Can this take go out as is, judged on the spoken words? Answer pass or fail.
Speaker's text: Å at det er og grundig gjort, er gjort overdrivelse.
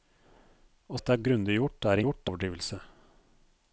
pass